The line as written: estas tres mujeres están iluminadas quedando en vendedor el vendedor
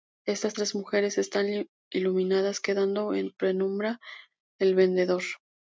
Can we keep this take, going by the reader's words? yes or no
no